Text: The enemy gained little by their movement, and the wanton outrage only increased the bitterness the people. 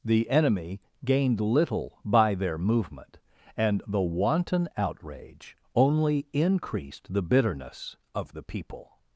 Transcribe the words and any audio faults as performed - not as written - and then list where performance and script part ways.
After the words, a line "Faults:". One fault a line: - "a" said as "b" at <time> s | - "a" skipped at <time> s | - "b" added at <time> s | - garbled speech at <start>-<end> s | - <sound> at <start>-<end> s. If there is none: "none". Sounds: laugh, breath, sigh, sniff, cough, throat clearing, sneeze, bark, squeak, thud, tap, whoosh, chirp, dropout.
The enemy gained little by their movement, and the wanton outrage only increased the bitterness of the people.
Faults:
- "of" added at 8.1 s